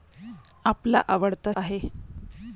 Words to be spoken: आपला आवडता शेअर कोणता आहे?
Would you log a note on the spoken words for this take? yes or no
yes